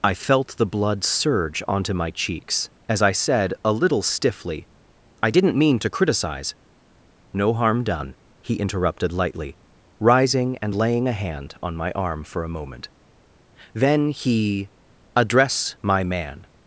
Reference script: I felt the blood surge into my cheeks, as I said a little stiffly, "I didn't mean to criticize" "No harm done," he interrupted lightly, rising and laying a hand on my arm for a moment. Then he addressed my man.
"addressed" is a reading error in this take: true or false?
true